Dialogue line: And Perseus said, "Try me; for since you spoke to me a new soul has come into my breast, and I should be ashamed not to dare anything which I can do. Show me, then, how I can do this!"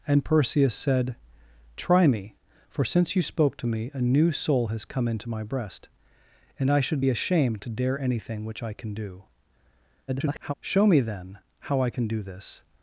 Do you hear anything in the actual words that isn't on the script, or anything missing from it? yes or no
yes